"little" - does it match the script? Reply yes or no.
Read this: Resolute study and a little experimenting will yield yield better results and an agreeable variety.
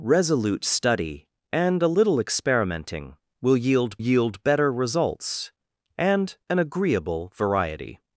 yes